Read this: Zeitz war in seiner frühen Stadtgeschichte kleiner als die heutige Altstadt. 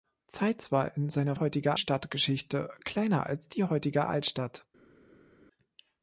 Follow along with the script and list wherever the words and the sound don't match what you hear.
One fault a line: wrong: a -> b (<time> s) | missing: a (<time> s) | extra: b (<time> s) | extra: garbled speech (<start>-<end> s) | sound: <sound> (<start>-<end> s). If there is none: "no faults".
wrong: frühen -> heutige (1.3 s)